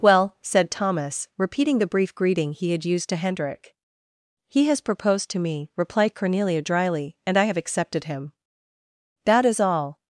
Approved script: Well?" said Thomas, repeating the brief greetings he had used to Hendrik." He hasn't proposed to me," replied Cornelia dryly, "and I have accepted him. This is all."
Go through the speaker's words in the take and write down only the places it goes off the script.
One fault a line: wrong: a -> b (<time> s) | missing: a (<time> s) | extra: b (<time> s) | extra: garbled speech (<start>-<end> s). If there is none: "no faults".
wrong: greetings -> greeting (2.1 s)
wrong: hasn't -> has (4.7 s)
wrong: This -> That (9.2 s)